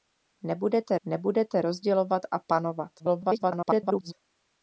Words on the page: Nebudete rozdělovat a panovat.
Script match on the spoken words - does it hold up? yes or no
no